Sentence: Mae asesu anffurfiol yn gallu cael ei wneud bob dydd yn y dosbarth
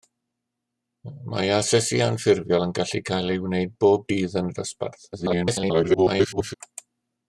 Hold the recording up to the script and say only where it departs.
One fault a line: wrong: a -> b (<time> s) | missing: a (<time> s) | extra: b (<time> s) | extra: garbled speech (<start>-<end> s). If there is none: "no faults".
extra: garbled speech (5.1-6.5 s)